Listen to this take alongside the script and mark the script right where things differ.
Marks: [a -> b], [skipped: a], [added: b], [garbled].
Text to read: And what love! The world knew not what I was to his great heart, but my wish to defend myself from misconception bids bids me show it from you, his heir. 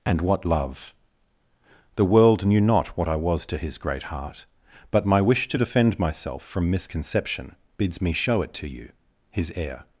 And what love! The world knew not what I was to his great heart, but my wish to defend myself from misconception bids [skipped: bids] me show it [from -> to] you, his heir.